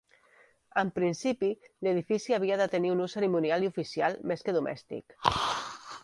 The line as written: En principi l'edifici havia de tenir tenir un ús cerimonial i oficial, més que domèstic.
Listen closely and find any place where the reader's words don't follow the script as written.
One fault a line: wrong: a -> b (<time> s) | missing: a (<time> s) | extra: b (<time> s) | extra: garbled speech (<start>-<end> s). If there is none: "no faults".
missing: tenir (2.9 s)